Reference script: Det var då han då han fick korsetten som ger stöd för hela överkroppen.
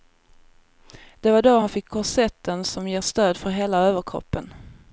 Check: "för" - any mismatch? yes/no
no